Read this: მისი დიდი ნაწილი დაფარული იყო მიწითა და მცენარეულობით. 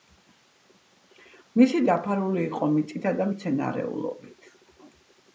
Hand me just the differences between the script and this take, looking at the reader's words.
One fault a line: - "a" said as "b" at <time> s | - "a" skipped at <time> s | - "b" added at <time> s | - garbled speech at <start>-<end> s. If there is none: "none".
- "დიდი ნაწილი" skipped at 1.8 s